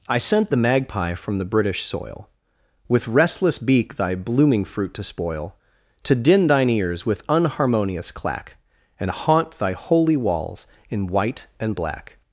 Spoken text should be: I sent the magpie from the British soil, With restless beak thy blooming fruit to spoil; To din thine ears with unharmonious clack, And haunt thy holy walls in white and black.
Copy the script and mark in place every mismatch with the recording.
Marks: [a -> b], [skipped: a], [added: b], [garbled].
I sent the magpie from the British soil, With restless beak thy blooming fruit to spoil; To din thine ears with unharmonious clack, And haunt thy holy walls in white and black.